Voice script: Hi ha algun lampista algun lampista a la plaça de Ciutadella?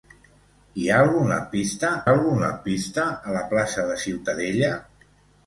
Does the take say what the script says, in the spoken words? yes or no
yes